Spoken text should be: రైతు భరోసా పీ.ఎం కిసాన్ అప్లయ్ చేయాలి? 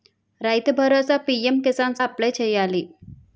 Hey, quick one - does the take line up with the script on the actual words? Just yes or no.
yes